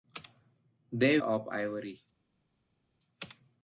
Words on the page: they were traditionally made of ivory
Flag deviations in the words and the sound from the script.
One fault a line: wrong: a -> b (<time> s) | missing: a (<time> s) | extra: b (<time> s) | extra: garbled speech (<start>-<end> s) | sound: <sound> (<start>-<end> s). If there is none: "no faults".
missing: were traditionally made (1.2 s)